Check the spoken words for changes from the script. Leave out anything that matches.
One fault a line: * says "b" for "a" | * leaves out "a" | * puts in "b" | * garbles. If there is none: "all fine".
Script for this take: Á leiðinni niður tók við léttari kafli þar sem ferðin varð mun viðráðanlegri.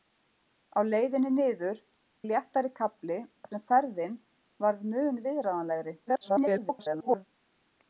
* leaves out "tók"
* leaves out "þar"
* garbles